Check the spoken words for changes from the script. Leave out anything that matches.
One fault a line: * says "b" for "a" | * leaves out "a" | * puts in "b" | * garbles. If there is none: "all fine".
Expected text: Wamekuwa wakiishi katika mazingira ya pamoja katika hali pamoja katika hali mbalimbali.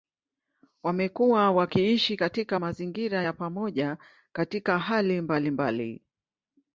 * leaves out "pamoja katika hali"